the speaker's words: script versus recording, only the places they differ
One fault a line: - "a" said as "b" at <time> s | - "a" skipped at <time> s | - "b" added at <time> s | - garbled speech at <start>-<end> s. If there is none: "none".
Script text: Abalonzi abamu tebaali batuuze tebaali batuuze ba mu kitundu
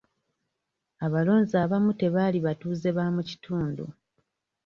- "tebaali batuuze" skipped at 2.9 s